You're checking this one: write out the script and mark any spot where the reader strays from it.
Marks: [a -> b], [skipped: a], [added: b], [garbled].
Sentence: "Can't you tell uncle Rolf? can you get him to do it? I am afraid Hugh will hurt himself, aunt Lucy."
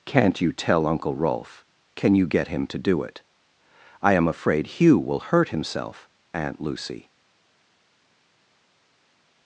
"Can't you tell uncle Rolf? can you get him to do it? I am afraid Hugh will hurt himself, aunt Lucy."